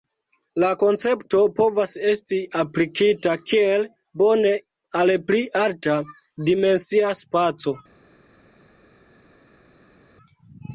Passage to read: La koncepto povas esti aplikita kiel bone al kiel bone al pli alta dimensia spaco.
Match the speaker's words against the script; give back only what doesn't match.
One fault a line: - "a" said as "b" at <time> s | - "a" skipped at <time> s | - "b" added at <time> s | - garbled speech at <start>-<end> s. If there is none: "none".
- "kiel bone al" skipped at 5.1 s